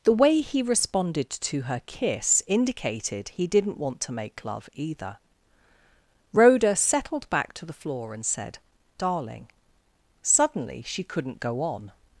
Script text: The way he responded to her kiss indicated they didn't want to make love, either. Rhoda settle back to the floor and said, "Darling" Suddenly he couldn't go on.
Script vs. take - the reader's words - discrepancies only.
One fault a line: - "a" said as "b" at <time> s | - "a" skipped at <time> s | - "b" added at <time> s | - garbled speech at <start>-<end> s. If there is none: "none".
- "they" said as "he" at 3.3 s
- "settle" said as "settled" at 6.8 s
- "he" said as "she" at 10.9 s